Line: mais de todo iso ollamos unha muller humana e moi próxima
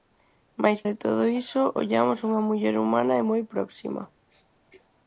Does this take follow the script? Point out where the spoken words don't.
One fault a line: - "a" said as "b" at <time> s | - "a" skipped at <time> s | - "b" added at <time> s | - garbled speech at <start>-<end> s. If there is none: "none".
none